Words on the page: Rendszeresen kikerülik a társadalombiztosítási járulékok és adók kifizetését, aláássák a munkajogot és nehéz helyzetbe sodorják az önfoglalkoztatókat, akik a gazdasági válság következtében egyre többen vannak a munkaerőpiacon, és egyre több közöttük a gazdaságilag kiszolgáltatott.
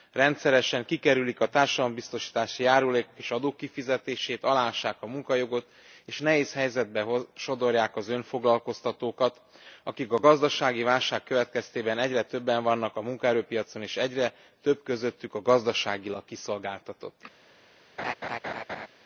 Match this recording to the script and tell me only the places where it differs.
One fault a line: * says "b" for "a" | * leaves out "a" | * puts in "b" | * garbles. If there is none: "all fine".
all fine